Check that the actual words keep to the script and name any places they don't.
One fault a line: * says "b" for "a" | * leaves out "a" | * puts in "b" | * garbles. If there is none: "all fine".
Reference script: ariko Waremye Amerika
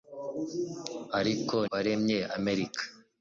all fine